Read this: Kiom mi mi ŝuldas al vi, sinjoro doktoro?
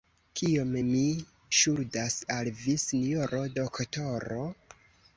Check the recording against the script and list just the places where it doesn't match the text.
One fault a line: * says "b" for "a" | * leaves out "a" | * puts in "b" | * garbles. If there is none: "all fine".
* leaves out "mi"